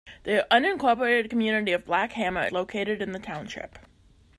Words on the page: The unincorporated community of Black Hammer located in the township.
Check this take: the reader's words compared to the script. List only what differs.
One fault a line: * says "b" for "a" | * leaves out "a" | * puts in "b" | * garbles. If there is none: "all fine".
all fine